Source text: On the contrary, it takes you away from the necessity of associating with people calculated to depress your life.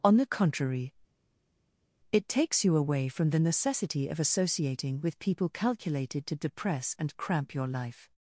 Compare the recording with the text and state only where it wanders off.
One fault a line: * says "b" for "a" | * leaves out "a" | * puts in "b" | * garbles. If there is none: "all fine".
* puts in "and cramp"